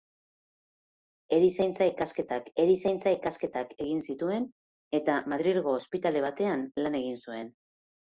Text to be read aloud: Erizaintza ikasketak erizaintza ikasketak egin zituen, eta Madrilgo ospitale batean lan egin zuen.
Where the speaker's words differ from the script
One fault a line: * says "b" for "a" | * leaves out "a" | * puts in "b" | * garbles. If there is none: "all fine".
all fine